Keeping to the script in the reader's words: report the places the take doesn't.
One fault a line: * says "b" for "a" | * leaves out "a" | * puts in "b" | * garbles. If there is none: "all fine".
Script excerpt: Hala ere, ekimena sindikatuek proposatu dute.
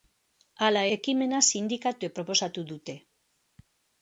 * leaves out "ere"